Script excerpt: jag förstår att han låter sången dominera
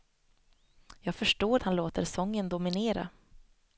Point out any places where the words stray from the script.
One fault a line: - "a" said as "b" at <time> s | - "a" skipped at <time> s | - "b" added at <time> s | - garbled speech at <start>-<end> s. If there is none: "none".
none